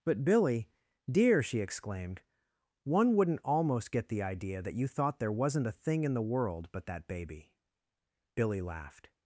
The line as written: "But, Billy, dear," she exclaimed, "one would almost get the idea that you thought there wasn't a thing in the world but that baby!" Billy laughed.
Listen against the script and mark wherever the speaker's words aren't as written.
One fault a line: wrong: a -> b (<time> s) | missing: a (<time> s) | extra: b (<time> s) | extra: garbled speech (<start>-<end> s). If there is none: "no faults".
wrong: would -> wouldn't (3.1 s)